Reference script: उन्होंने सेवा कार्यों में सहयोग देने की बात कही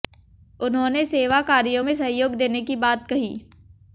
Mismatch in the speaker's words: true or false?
false